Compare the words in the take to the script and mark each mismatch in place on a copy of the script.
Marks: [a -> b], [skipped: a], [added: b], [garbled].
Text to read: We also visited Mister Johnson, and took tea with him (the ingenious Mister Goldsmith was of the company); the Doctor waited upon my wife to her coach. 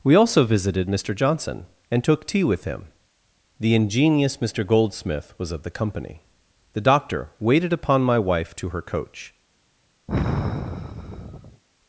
We also visited Mister Johnson, and took tea with him (the ingenious Mister Goldsmith was of the company); the Doctor waited upon my wife to her coach.